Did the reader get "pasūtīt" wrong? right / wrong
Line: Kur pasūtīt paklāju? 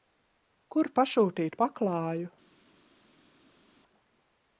right